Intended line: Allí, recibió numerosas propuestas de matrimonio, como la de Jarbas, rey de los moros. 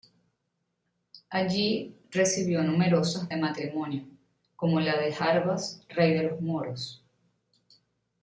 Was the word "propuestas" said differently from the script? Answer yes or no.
yes